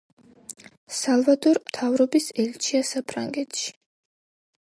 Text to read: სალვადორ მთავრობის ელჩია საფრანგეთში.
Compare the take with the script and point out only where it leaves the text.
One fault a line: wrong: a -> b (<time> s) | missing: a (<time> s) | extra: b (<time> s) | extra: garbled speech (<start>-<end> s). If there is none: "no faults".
no faults